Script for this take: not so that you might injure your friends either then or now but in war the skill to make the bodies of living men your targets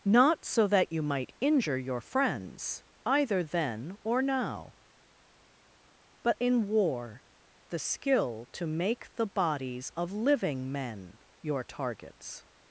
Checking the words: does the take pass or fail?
pass